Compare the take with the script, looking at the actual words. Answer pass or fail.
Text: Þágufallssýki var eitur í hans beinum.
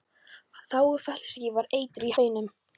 fail